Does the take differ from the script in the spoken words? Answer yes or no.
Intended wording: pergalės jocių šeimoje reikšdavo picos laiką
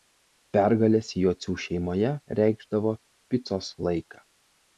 no